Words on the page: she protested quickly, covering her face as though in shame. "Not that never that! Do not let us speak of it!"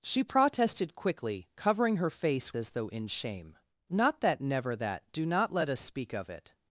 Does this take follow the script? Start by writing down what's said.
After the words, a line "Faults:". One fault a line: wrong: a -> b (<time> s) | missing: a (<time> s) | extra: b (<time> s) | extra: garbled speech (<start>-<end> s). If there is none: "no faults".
she protested quickly, covering her face as though in shame. "Not that never that! Do not let us speak of it!"
Faults:
no faults